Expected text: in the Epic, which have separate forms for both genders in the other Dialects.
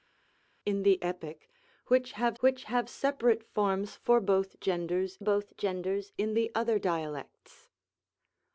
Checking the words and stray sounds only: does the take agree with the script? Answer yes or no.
no